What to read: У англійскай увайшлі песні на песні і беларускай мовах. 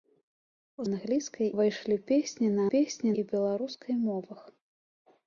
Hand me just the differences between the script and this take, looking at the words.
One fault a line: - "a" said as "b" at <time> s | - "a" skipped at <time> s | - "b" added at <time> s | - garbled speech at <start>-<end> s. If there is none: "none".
none